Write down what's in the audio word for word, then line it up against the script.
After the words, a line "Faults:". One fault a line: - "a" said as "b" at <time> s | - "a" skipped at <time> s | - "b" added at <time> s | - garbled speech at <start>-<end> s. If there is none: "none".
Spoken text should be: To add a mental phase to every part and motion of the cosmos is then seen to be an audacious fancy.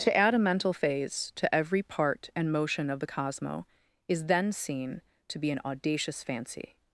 To add a mental phase to every part and motion of the cosmo is then seen to be an audacious fancy.
Faults:
- "cosmos" said as "cosmo" at 3.0 s